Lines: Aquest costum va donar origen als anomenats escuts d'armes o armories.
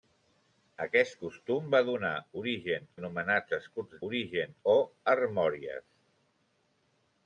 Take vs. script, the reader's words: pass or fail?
fail